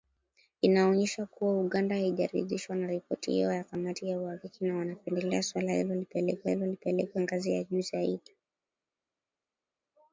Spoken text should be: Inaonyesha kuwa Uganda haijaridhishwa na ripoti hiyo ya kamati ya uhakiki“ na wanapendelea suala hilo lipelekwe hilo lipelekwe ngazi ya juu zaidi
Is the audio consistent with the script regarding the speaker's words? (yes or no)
yes